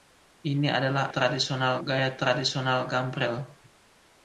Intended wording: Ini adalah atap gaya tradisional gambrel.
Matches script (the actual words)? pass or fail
fail